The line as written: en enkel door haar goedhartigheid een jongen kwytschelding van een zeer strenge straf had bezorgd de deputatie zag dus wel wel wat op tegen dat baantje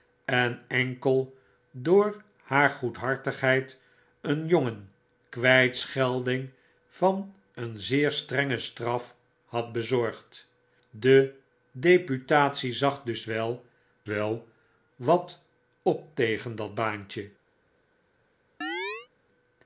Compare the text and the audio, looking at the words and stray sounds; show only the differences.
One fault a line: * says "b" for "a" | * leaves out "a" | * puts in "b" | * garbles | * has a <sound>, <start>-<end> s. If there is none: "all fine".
* has a chirp, 18.6-19.1 s